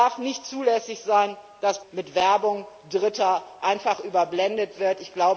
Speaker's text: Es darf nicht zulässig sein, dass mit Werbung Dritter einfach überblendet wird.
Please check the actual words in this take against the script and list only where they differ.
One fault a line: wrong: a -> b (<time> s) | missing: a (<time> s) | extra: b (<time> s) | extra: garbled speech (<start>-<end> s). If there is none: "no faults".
no faults